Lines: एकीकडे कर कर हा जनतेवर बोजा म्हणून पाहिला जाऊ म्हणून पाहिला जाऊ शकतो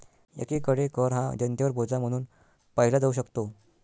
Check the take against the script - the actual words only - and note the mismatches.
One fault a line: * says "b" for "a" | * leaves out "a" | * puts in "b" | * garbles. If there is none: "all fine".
* leaves out "कर"
* leaves out "म्हणून पाहिला जाऊ"